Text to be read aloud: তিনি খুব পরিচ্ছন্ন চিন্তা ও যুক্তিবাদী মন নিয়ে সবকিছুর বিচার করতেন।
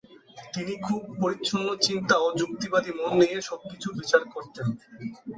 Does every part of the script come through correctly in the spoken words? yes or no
yes